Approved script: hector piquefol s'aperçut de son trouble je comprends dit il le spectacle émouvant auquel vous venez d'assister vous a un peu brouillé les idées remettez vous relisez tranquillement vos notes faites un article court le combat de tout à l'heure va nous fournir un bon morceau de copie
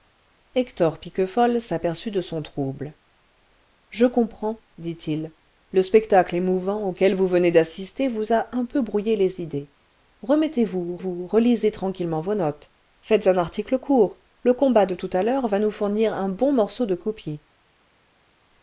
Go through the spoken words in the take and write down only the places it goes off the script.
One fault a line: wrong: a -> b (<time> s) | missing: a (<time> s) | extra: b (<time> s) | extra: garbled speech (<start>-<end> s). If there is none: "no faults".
extra: vous (11.0 s)